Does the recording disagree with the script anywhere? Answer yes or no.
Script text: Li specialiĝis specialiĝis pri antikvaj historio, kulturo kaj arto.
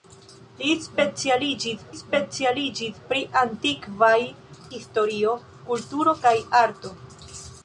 no